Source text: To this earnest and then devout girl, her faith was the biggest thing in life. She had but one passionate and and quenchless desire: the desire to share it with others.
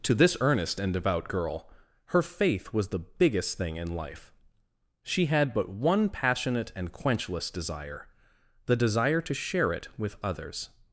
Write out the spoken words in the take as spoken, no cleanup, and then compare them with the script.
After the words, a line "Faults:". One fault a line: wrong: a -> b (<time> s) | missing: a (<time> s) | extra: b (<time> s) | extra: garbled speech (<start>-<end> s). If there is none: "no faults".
To this earnest and devout girl, her faith was the biggest thing in life. She had but one passionate and quenchless desire: the desire to share it with others.
Faults:
missing: then (0.9 s)
missing: and (6.9 s)